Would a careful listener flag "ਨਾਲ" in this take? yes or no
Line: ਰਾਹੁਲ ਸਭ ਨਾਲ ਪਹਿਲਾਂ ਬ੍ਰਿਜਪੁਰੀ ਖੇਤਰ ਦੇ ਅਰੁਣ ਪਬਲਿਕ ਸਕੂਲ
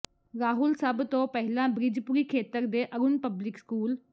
yes